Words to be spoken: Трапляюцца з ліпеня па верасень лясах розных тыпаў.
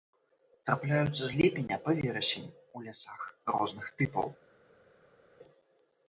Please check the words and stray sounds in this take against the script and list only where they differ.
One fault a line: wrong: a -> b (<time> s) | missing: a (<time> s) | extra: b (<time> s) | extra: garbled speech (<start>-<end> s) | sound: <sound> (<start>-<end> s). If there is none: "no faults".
extra: у (2.8 s)